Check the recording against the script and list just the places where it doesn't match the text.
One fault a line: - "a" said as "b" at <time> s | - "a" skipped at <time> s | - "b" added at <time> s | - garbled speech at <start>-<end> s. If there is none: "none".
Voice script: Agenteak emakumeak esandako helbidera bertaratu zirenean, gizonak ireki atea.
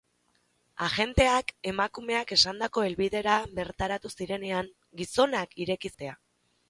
none